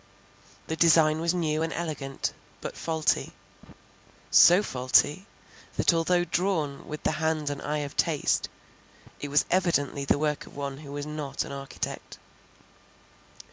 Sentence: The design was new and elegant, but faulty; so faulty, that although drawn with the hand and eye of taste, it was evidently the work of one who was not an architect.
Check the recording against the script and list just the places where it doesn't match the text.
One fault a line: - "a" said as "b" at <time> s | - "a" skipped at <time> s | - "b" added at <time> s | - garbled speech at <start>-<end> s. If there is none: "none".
none